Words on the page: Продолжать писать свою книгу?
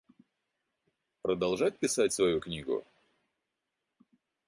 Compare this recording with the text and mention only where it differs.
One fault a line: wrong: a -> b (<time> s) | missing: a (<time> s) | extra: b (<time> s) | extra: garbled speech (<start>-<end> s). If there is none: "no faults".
no faults